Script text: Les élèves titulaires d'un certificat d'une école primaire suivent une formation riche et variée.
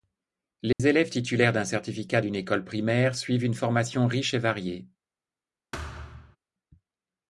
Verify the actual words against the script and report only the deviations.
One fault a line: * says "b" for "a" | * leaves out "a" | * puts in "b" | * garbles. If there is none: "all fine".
all fine